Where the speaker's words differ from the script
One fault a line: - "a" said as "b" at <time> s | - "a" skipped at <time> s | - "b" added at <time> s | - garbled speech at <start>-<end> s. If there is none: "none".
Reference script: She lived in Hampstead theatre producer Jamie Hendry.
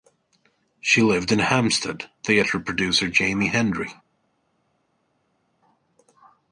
none